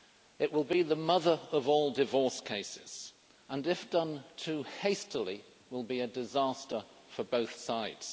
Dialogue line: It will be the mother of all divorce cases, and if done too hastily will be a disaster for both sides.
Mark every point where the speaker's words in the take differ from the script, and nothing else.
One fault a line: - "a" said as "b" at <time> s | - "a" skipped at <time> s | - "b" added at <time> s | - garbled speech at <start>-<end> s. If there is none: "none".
none